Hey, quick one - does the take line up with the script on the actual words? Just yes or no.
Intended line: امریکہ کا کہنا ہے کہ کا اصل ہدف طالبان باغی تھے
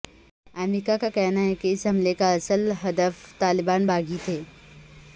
no